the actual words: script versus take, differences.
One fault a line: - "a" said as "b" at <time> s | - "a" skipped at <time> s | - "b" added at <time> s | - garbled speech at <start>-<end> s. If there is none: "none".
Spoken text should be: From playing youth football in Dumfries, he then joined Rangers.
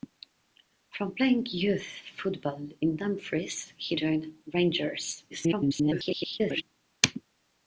- "then" skipped at 4.0 s
- garbled speech at 5.3-6.6 s